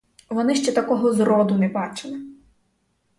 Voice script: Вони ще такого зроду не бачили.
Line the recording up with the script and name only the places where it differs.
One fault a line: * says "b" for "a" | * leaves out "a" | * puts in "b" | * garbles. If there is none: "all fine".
all fine